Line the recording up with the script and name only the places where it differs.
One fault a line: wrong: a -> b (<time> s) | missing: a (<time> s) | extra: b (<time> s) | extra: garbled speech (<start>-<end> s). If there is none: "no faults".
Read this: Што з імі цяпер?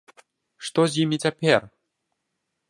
no faults